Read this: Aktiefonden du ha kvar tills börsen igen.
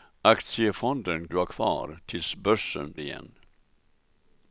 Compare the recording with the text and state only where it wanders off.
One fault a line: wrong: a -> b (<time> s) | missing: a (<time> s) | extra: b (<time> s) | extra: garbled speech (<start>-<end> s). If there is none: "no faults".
no faults